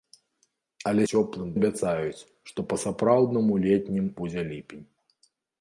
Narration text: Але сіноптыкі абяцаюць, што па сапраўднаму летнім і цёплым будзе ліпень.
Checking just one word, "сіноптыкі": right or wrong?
wrong